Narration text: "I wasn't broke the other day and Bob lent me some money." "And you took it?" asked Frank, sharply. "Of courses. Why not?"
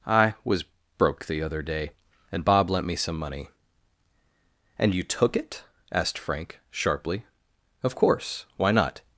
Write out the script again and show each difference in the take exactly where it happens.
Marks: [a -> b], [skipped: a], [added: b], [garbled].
"I [wasn't -> was] broke the other day and Bob lent me some money." "And you took it?" asked Frank, sharply. "Of [courses. -> course] Why not?"